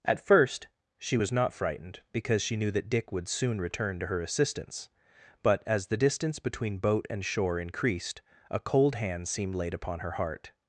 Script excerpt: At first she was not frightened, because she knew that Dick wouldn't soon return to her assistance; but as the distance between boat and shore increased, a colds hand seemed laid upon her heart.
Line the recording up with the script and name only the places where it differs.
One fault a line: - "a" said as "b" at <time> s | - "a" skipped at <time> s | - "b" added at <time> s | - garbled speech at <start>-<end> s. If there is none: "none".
- "wouldn't" said as "would" at 3.1 s
- "colds" said as "cold" at 8.6 s